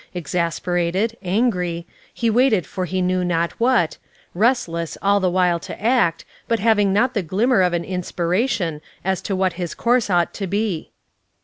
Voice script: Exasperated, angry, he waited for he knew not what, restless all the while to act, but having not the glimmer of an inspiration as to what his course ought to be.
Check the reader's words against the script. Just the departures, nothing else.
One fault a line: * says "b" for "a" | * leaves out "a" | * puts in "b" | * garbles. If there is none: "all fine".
all fine